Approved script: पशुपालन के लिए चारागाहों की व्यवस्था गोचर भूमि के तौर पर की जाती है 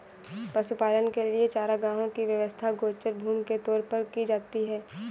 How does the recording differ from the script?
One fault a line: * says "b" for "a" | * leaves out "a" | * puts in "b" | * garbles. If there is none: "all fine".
all fine